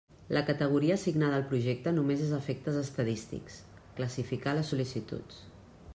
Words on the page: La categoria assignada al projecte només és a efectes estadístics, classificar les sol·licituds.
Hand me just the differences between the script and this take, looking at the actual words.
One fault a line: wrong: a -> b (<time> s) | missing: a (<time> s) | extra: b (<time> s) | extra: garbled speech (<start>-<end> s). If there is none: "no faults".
no faults